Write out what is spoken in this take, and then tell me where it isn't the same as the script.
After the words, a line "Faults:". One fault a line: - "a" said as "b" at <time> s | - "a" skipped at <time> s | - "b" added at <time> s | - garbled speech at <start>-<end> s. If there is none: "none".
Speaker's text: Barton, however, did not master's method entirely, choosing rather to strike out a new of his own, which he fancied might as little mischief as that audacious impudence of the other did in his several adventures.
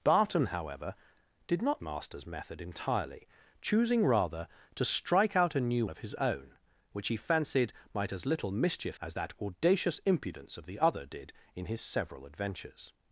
Barton, however, did not master's method entirely, choosing rather to strike out a new of his own, which he fancied might as little mischief as that audacious impudence of the other did in his several adventures.
Faults:
none